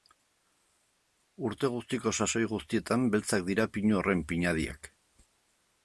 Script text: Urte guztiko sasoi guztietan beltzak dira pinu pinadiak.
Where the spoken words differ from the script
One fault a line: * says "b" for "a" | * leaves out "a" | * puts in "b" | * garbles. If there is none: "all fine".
* puts in "horren"